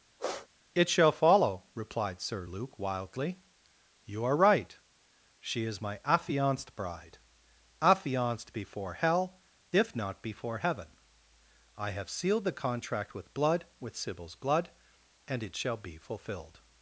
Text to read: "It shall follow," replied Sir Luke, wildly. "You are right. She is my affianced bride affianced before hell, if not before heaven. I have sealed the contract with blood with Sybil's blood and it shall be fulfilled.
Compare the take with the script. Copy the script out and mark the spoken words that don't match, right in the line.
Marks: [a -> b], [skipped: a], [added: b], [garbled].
"It shall follow," replied Sir Luke, wildly. "You are right. She is my affianced bride affianced before hell, if not before heaven. I have sealed the contract with blood with Sybil's blood and it shall be fulfilled.